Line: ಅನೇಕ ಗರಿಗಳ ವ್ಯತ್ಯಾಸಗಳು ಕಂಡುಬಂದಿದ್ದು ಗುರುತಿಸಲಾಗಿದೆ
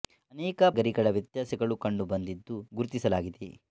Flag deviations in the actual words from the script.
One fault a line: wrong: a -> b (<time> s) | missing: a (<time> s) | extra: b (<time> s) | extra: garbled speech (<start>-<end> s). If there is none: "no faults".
no faults